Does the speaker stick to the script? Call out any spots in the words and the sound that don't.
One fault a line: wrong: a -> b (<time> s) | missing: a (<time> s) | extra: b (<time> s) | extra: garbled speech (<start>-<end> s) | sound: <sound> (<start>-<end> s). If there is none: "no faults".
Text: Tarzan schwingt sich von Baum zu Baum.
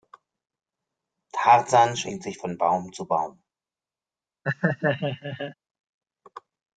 sound: laugh (4.4-5.5 s)